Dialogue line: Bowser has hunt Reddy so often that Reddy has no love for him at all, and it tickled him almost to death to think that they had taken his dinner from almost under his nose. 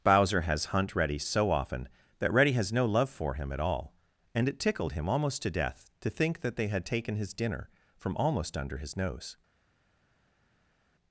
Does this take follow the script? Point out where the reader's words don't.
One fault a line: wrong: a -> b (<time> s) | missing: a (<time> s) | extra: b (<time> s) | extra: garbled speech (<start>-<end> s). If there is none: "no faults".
no faults